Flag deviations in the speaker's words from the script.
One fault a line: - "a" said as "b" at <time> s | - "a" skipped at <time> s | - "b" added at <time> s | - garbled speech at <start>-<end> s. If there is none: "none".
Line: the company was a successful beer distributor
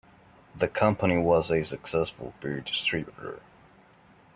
none